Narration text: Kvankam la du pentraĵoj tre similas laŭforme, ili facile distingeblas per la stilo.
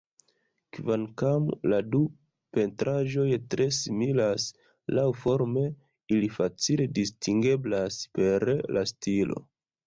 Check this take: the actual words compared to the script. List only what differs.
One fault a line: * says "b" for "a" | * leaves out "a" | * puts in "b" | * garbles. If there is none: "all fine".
all fine